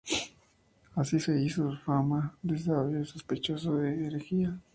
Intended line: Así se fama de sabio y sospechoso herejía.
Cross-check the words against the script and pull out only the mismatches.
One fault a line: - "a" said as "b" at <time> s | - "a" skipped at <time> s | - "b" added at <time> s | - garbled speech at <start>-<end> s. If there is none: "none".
- "hizo" added at 1.4 s
- "de" added at 3.7 s